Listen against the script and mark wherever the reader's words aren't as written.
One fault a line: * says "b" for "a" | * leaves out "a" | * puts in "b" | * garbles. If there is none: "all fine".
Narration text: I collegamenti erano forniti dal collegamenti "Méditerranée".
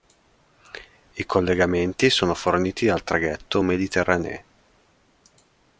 * says "sono" for "erano"
* says "traghetto" for "collegamenti"